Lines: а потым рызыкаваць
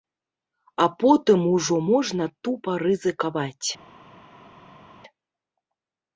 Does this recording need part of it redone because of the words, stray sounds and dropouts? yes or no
yes